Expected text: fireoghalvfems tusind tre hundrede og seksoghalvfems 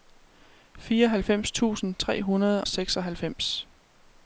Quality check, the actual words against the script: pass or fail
fail